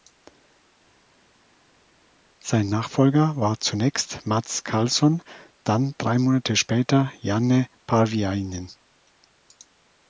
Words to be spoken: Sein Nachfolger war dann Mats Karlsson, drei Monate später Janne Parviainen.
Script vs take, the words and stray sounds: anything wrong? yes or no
yes